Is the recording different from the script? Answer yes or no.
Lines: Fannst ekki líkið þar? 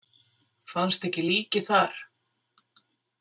no